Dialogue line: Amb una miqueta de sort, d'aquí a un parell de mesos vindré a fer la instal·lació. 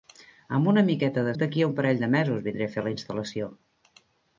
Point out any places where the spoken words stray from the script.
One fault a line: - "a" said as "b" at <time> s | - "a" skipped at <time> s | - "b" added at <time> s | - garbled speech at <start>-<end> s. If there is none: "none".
- "sort" skipped at 1.4 s